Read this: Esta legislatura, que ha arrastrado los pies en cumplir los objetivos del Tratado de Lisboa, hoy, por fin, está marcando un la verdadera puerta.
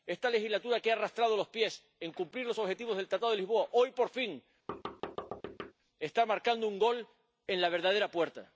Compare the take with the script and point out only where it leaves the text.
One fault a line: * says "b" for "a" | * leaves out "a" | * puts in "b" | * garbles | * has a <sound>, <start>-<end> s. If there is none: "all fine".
* has a thud, 4.7-5.7 s
* puts in "gol en"